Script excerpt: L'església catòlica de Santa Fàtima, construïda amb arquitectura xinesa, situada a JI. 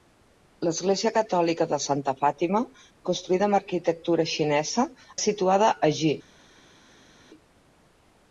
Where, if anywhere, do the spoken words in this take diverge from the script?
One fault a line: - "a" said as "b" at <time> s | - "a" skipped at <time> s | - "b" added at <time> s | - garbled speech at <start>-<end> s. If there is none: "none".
none